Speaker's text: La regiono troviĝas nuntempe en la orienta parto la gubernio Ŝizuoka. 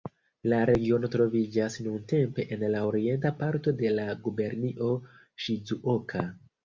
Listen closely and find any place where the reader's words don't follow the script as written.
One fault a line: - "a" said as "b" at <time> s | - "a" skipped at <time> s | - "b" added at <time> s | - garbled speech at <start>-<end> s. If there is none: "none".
- "de" added at 3.8 s